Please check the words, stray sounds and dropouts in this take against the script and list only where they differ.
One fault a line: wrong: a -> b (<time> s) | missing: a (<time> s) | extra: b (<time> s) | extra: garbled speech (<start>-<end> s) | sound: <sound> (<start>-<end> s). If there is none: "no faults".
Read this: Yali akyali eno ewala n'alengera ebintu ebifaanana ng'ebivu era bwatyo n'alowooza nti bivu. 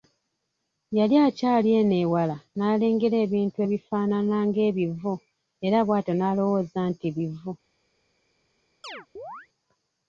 sound: chirp (8.8-9.5 s)